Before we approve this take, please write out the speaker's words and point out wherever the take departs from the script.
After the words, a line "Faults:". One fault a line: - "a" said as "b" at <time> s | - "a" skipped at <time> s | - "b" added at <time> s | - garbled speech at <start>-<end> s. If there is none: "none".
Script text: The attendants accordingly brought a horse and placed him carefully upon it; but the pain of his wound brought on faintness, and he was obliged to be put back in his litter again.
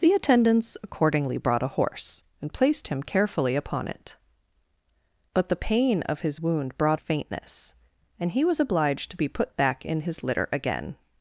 The attendants accordingly brought a horse and placed him carefully upon it; but the pain of his wound brought faintness, and he was obliged to be put back in his litter again.
Faults:
- "on" skipped at 7.0 s